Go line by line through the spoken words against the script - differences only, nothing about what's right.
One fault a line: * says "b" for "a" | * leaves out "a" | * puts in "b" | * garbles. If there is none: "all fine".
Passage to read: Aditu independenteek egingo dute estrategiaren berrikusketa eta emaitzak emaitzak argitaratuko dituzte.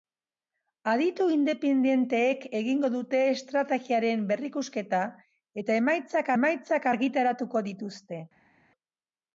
all fine